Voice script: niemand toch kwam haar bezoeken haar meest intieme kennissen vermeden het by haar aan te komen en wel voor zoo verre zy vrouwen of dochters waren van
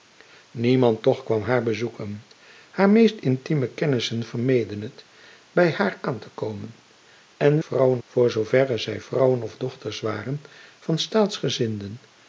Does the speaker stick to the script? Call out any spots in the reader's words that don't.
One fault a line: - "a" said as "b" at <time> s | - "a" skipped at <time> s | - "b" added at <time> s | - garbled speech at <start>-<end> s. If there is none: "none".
- "wel" said as "vrouwen" at 7.6 s